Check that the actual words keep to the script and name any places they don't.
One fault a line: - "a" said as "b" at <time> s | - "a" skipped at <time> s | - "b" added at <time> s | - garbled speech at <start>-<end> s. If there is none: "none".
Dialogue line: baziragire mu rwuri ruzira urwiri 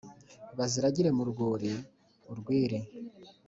- "ruzira" skipped at 1.7 s